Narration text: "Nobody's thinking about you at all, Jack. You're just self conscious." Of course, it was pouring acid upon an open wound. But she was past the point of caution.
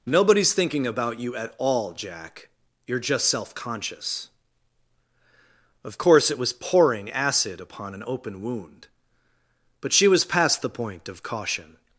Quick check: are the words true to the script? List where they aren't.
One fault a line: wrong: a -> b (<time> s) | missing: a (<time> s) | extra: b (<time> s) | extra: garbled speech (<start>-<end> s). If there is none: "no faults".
no faults